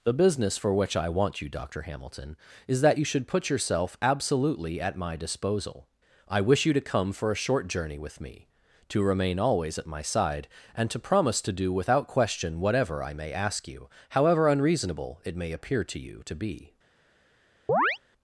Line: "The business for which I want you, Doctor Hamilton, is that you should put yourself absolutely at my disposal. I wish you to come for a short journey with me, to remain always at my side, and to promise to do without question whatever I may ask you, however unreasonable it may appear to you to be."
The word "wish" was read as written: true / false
true